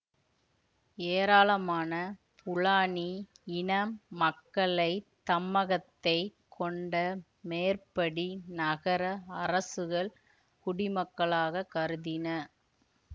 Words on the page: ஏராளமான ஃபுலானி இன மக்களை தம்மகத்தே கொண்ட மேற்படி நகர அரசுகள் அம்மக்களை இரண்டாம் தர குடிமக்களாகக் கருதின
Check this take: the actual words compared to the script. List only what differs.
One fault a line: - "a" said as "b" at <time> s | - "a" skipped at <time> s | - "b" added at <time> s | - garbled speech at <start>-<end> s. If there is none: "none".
- "அம்மக்களை இரண்டாம் தர" skipped at 10.1 s